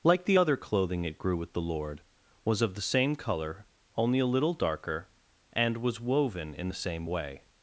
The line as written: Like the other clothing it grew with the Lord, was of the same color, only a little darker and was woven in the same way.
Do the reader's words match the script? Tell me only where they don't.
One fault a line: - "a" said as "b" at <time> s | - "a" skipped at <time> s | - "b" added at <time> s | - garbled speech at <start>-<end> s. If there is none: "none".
none